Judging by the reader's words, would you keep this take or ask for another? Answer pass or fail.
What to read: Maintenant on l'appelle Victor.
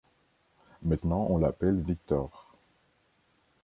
pass